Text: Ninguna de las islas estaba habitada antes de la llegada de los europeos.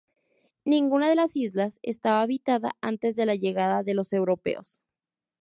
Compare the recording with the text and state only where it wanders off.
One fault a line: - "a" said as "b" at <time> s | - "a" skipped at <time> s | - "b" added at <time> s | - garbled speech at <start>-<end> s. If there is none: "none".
none